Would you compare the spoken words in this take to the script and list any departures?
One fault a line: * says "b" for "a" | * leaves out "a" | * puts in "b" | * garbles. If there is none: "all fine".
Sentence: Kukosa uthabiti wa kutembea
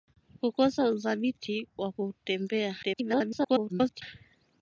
* garbles